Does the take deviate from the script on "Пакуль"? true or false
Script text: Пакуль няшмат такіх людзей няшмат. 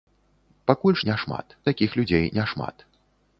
false